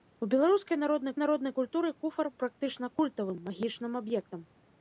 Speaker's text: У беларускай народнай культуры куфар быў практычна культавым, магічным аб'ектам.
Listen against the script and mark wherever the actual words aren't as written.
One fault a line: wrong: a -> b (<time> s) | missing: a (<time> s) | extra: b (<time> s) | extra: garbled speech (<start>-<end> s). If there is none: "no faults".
extra: народнай (1.2 s)
missing: быў (2.3 s)